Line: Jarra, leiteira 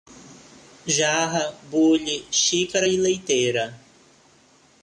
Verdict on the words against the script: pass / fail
fail